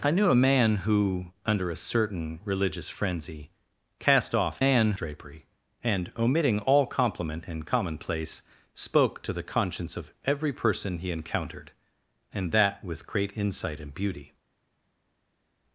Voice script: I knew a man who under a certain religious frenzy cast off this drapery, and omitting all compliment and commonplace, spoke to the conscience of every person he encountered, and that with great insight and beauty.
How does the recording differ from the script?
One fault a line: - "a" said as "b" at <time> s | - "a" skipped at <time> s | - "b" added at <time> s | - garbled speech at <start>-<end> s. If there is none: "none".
- "this" said as "man" at 4.6 s